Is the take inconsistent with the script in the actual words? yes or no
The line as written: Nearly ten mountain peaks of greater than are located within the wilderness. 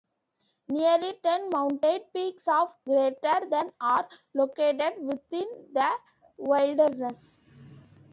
no